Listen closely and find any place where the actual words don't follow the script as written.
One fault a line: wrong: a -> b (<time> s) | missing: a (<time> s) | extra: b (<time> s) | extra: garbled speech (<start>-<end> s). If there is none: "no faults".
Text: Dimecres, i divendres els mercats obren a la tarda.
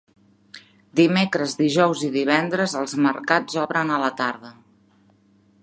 extra: dijous (1.6 s)